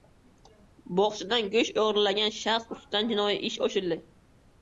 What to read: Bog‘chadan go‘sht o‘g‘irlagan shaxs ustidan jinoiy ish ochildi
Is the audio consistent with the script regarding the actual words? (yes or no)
yes